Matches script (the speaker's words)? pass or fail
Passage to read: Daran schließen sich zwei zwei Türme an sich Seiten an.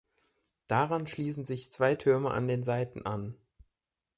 fail